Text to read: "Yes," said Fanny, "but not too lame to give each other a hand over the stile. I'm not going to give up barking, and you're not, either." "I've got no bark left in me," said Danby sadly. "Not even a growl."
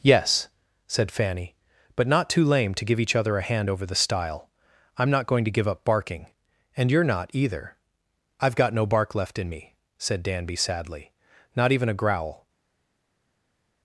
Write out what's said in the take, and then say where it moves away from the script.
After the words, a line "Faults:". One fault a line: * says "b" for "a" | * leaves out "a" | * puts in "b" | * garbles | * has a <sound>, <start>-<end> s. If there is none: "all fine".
"Yes," said Fanny, "but not too lame to give each other a hand over the stile. I'm not going to give up barking, and you're not, either." "I've got no bark left in me," said Danby sadly. "Not even a growl."
Faults:
all fine